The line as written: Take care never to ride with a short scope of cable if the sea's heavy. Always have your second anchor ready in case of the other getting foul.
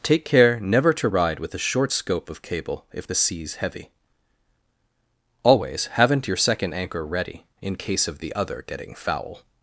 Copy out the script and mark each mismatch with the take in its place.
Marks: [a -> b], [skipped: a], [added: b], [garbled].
Take care never to ride with a short scope of cable if the sea's heavy. Always [have -> haven't] your second anchor ready in case of the other getting foul.